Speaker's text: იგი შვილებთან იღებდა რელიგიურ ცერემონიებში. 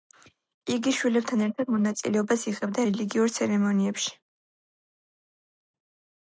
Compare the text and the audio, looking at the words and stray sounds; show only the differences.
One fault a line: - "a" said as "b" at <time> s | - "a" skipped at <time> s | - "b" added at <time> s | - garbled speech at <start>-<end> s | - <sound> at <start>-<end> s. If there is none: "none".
- "ერთად მონაწილეობას" added at 1.5 s